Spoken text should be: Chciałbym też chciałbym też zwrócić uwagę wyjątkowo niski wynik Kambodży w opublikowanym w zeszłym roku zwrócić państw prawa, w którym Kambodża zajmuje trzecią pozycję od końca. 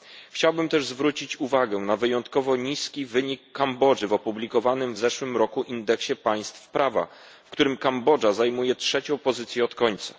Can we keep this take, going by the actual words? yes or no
no